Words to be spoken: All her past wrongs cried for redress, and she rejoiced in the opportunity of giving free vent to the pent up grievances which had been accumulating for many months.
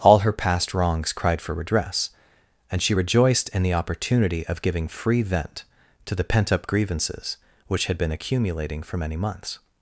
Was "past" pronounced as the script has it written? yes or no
yes